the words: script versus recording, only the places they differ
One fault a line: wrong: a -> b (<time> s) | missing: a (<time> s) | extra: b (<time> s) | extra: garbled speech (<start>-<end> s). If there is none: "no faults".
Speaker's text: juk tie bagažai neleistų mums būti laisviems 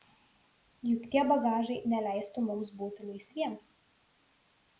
no faults